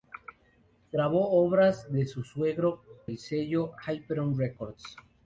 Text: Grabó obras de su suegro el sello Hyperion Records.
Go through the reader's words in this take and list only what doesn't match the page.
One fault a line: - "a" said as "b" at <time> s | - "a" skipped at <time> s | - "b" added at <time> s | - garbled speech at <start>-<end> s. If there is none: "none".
none